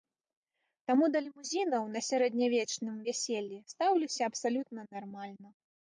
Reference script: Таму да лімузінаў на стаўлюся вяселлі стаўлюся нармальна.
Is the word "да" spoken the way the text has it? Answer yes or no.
yes